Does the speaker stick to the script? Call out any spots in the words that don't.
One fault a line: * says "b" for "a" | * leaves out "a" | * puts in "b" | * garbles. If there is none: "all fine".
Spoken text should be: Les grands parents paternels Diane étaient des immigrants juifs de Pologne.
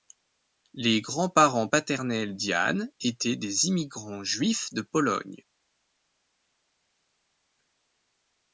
all fine